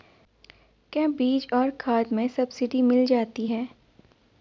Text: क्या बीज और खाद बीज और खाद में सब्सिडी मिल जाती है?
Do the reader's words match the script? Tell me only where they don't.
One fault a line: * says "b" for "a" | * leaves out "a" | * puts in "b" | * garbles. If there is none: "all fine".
* leaves out "बीज और खाद"